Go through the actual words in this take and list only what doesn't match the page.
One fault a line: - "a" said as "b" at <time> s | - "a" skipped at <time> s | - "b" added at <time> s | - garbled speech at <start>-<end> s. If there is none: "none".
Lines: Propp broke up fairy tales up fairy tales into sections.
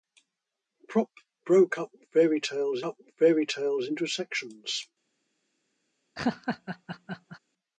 none